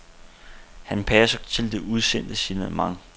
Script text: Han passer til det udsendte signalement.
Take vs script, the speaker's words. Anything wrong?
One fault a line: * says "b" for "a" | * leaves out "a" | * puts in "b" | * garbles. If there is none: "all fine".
all fine